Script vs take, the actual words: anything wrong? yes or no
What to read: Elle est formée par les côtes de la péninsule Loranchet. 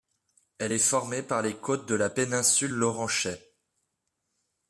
no